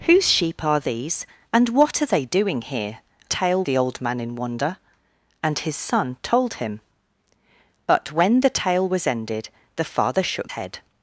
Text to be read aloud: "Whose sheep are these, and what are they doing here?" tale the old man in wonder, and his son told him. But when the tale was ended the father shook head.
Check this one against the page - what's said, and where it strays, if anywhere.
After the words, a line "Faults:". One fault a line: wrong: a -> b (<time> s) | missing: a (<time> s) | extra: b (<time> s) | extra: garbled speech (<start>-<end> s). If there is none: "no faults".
"Whose sheep are these, and what are they doing here?" tale the old man in wonder, and his son told him. But when the tale was ended the father shook head.
Faults:
no faults